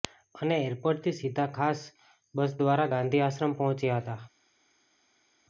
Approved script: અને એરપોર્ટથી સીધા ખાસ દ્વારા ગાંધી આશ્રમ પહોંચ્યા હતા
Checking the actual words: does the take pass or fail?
fail